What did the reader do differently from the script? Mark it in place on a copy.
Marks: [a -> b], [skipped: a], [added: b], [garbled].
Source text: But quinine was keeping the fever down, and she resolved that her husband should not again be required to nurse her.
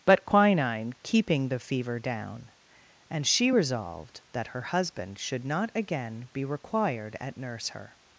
But quinine [skipped: was] keeping the fever down, and she resolved that her husband should not again be required [to -> at] nurse her.